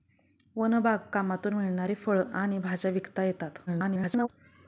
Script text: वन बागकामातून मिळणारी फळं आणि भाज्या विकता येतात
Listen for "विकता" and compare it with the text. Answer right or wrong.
right